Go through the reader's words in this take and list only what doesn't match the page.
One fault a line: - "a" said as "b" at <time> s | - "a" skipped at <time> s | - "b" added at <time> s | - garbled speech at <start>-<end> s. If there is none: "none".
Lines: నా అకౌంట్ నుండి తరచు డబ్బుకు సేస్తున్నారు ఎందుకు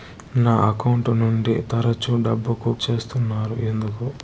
none